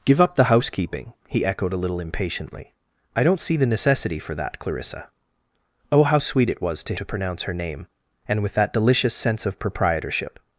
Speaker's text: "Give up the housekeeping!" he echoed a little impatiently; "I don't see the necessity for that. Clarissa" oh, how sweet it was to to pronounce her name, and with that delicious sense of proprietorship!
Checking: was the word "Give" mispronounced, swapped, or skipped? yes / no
no